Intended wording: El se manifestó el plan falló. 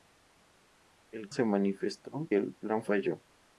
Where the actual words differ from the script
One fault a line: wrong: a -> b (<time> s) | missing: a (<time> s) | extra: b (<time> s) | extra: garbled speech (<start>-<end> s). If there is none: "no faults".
no faults